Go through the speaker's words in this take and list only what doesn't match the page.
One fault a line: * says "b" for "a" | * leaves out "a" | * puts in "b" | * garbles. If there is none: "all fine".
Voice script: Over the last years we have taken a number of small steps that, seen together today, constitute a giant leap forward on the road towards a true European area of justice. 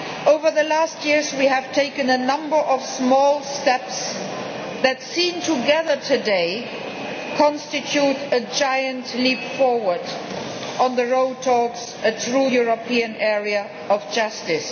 all fine